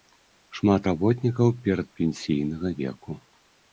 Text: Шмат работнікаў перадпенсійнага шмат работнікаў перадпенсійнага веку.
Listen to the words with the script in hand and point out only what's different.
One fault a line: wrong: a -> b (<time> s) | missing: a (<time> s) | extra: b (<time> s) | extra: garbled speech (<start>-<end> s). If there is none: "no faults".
missing: шмат работнікаў перадпенсійнага (2.7 s)